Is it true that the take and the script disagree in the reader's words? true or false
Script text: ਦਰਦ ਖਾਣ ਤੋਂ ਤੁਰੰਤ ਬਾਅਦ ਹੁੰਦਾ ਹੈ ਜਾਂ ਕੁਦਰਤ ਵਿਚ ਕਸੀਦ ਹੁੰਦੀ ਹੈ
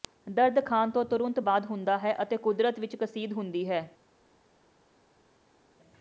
true